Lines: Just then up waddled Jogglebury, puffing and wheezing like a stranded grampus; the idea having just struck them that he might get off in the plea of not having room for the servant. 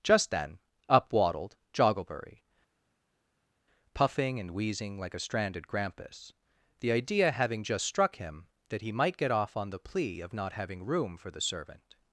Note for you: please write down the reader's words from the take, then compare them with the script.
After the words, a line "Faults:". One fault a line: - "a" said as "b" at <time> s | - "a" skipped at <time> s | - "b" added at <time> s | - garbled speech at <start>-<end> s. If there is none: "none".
Just then up waddled Jogglebury, puffing and wheezing like a stranded grampus; the idea having just struck him that he might get off on the plea of not having room for the servant.
Faults:
- "them" said as "him" at 8.2 s
- "in" said as "on" at 9.6 s